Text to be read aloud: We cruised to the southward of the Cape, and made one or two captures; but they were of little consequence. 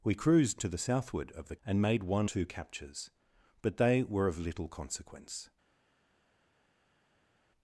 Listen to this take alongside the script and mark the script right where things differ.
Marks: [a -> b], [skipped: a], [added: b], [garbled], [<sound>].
We cruised to the southward of the [skipped: Cape,] and made one [skipped: or] two captures; but they were of little consequence.